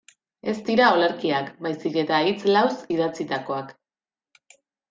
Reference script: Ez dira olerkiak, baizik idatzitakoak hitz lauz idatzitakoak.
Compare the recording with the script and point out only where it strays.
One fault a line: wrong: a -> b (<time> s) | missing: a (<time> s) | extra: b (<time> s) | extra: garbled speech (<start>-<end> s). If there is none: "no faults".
wrong: idatzitakoak -> eta (2.0 s)